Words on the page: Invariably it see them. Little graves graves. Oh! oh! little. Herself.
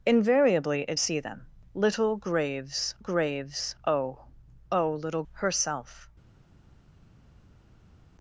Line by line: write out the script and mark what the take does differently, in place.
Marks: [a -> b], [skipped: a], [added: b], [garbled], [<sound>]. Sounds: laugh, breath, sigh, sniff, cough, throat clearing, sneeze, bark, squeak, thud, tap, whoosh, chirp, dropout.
Invariably it see them. Little graves graves. Oh! oh! little. Herself.